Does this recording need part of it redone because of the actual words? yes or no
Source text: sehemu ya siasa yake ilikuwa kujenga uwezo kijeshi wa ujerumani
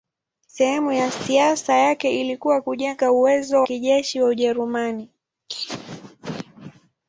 no